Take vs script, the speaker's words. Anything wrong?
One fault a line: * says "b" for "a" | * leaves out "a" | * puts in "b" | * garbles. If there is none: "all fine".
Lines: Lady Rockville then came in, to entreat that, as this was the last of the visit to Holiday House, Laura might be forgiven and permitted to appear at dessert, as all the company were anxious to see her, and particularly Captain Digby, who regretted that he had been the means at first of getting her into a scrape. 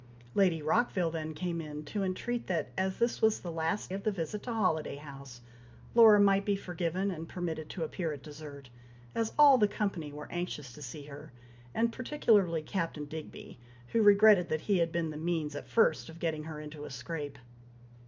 all fine